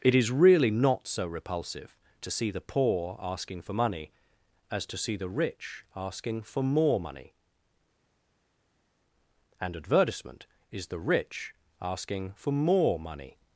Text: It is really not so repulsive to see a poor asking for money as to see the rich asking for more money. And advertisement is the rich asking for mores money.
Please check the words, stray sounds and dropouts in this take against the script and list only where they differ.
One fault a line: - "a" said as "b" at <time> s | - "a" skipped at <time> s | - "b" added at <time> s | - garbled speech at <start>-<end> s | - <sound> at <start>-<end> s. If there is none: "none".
- "a" said as "the" at 2.5 s
- "mores" said as "more" at 12.5 s